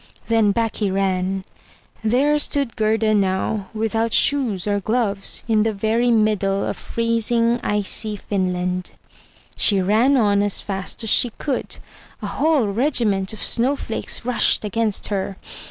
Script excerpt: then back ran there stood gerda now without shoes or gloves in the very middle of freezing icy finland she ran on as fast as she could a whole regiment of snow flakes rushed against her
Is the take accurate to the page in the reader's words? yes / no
no